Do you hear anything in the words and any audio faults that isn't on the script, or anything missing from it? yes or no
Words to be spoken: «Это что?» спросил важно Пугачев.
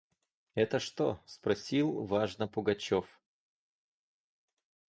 no